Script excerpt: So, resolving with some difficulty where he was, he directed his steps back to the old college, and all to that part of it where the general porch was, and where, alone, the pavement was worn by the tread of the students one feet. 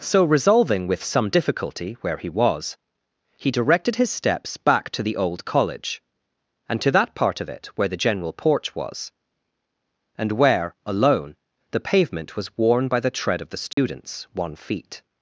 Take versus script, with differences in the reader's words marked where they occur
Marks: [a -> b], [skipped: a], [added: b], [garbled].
So, resolving with some difficulty where he was, he directed his steps back to the old college, and [skipped: all] to that part of it where the general porch was, and where, alone, the pavement was worn by the tread of the students one feet.